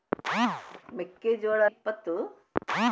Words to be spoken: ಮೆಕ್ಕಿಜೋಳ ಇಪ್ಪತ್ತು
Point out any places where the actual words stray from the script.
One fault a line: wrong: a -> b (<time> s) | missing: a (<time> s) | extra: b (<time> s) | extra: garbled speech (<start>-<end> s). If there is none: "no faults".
no faults